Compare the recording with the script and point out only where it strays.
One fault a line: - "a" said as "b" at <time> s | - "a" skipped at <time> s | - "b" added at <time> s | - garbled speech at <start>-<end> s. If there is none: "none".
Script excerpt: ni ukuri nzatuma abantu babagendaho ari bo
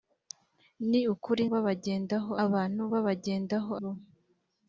- "nzatuma" said as "babagendaho" at 1.5 s
- "ari" skipped at 3.7 s